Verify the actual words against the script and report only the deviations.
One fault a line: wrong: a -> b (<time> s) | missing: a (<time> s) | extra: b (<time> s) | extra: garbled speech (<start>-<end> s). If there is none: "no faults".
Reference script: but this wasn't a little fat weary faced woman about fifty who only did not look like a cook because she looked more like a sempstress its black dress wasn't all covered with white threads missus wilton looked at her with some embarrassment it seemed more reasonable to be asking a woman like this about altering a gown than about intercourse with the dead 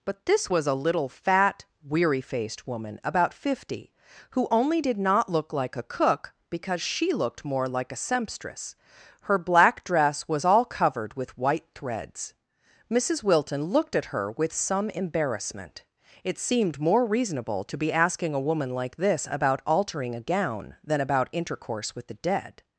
wrong: wasn't -> was (0.5 s)
wrong: its -> her (9.2 s)
wrong: wasn't -> was (10.3 s)